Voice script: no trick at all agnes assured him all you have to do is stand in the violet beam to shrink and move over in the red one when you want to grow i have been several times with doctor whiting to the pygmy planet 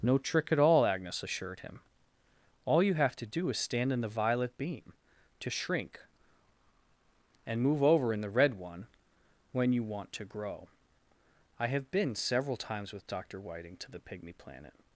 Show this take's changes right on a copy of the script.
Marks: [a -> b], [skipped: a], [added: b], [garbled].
no trick at all agnes assured him all you have to do is stand in the violet beam to shrink and move over in the red one when you want to grow i have been several times with doctor whiting to the pygmy planet